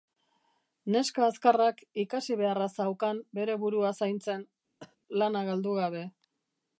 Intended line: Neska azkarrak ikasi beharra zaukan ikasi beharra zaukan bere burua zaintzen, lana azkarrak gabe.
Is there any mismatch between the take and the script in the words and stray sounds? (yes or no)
yes